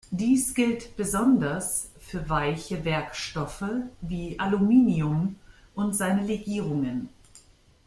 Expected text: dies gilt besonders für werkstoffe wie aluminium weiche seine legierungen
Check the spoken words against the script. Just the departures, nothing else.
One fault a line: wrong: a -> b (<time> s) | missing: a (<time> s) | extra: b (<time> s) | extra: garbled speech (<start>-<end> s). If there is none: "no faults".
extra: weiche (2.3 s)
wrong: weiche -> und (5.8 s)